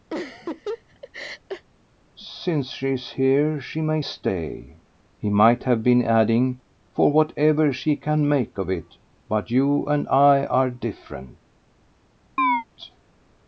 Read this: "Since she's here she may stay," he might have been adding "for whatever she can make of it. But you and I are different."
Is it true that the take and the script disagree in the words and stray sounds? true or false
true